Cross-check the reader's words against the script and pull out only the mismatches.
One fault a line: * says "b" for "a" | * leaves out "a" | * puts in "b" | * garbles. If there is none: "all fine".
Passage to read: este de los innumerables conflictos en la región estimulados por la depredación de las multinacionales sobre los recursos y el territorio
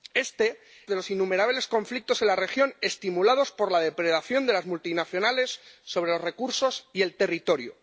all fine